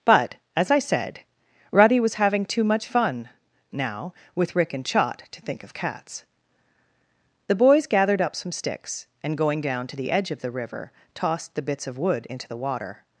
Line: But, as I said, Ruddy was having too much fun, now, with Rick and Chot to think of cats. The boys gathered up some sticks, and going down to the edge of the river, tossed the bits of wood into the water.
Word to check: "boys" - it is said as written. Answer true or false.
true